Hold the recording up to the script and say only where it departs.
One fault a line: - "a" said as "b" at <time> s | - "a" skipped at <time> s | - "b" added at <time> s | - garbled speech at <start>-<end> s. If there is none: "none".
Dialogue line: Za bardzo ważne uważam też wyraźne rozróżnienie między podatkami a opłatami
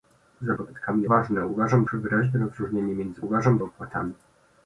- "bardzo" said as "podatkami" at 0.5 s
- "też" skipped at 1.8 s
- "podatkami" said as "uważam" at 3.2 s